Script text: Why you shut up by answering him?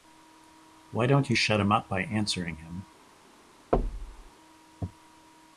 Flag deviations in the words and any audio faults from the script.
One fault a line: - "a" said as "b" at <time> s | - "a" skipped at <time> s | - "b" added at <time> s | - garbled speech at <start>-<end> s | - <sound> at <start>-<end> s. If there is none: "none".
- "don't" added at 1.1 s
- "him" added at 1.6 s
- thud at 3.7-4.3 s